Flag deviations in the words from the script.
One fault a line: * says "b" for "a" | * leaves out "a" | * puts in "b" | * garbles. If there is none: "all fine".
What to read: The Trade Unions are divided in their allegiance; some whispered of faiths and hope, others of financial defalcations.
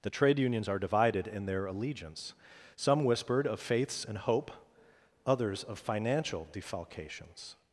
all fine